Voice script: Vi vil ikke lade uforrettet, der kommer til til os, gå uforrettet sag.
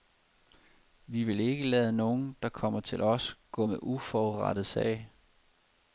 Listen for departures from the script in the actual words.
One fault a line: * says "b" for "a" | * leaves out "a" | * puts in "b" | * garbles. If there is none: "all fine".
* says "nogen" for "uforrettet"
* leaves out "til"
* puts in "med"